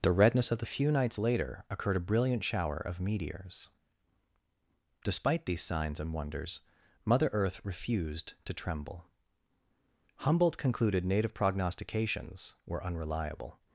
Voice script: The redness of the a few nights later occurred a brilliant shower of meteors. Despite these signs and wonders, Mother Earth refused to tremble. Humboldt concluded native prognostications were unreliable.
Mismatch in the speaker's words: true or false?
false